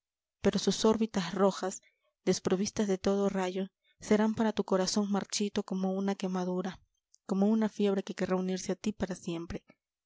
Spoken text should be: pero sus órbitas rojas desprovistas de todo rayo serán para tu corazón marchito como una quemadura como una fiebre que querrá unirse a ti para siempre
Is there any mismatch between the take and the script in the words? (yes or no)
no